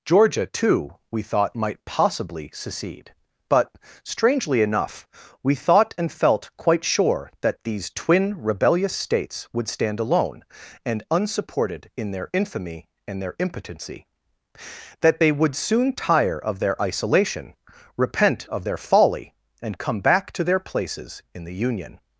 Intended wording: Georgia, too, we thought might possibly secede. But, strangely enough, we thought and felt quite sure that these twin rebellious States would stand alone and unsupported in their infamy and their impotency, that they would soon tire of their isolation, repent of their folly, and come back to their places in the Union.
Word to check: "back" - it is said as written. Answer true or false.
true